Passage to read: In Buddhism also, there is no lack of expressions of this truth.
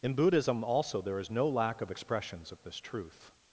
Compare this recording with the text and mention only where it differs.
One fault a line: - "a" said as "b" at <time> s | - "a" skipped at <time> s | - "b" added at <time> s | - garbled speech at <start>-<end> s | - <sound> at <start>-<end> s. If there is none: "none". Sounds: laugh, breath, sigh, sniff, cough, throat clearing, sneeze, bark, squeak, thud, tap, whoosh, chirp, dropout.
none